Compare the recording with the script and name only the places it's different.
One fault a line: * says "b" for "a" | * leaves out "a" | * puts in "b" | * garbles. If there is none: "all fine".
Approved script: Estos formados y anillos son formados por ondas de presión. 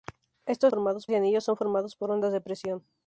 all fine